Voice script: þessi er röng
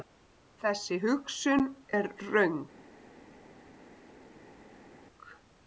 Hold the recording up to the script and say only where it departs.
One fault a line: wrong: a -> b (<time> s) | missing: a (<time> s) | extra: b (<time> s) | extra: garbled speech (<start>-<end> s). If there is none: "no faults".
extra: hugsun (1.0 s)